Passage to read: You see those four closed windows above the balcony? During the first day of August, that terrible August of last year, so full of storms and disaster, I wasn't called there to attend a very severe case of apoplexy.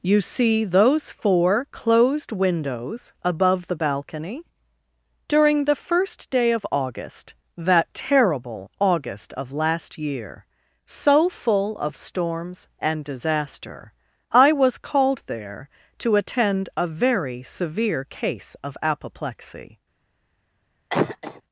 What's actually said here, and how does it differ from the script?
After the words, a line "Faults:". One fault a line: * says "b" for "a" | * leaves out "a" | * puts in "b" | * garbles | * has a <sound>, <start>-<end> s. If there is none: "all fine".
You see those four closed windows above the balcony? During the first day of August, that terrible August of last year, so full of storms and disaster, I was called there to attend a very severe case of apoplexy.
Faults:
* says "was" for "wasn't"
* has a cough, 20.9-21.4 s